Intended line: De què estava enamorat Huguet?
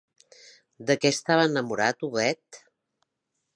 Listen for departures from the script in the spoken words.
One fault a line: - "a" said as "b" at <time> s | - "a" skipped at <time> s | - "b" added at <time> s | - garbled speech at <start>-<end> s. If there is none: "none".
none